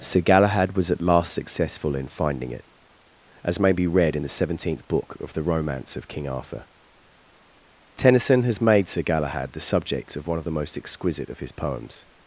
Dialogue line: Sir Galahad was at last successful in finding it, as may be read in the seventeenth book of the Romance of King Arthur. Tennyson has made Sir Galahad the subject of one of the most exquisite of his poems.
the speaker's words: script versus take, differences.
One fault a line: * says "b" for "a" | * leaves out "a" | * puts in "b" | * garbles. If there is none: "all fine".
all fine